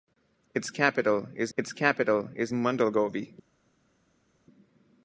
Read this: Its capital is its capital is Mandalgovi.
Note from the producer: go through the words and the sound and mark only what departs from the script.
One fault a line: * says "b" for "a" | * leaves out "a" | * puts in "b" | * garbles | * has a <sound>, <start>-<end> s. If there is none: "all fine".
all fine